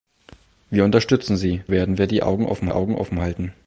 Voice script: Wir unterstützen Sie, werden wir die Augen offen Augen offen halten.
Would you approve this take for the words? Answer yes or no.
yes